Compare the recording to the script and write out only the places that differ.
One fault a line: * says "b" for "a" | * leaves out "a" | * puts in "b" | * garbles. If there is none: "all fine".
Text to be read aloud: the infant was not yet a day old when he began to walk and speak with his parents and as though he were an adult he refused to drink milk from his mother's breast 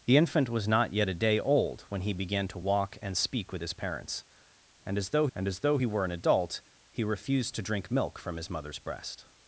* puts in "and as though"